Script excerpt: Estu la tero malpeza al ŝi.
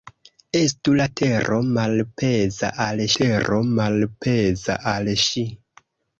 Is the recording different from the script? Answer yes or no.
yes